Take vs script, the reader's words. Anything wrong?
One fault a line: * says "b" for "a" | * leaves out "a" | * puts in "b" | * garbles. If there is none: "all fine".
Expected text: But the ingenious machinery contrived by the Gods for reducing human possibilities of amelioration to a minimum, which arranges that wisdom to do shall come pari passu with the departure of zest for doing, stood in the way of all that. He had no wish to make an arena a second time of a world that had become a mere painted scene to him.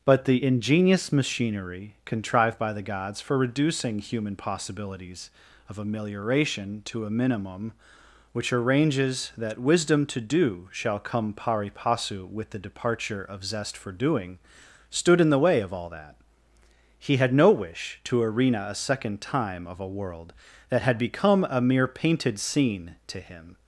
* leaves out "make an"